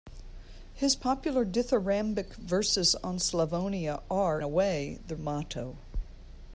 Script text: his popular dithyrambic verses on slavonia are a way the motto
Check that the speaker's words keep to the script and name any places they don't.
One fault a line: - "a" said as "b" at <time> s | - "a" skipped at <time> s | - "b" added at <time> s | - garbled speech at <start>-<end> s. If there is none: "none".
none